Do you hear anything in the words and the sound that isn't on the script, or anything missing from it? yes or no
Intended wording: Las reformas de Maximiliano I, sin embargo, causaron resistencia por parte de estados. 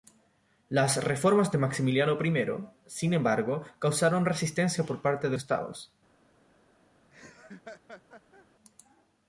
yes